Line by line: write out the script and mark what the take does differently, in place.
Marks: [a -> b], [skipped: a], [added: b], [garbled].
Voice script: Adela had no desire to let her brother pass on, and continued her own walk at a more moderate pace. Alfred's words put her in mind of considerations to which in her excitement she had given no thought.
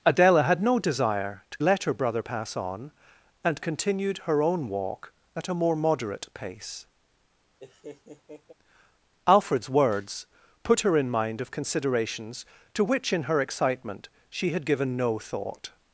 Adela had no desire to let her brother pass on, and continued her own walk at a more moderate pace. Alfred's words put her in mind of considerations to which in her excitement she had given no thought.